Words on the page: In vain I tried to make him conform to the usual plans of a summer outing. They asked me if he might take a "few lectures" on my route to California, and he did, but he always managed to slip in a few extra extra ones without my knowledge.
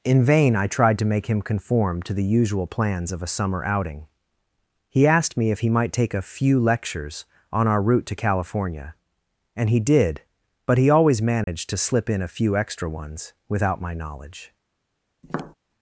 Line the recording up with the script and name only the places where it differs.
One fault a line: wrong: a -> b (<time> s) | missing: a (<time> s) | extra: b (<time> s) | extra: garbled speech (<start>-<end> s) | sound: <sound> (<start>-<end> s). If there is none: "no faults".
wrong: They -> He (4.9 s)
wrong: my -> our (7.7 s)
sound: dropout (11.4-11.5 s)
missing: extra (12.9 s)
sound: tap (15.2-15.5 s)